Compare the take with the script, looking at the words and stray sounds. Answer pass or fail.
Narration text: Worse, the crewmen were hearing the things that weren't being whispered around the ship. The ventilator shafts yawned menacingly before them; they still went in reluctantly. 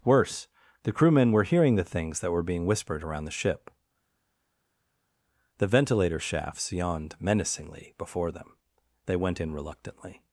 fail